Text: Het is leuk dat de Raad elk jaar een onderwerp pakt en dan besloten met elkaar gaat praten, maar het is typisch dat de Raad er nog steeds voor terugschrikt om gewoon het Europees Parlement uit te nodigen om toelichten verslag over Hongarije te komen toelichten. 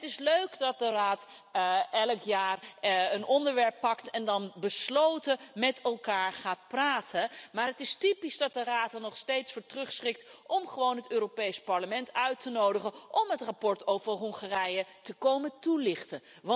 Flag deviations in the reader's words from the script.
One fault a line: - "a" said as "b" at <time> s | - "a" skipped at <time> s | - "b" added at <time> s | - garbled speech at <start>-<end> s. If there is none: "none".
- "toelichten" said as "het" at 13.3 s